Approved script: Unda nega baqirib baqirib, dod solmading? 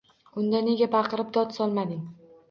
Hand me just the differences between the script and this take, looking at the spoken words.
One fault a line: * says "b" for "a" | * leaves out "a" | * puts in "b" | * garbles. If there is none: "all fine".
* leaves out "baqirib"